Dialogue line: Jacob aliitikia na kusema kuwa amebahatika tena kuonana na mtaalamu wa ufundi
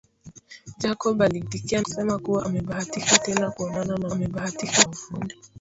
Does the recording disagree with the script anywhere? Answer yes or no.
yes